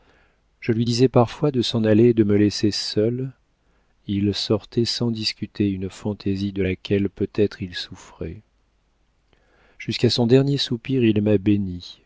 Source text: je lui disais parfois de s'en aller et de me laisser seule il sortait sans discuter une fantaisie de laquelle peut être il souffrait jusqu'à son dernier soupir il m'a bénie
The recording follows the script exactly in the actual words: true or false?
true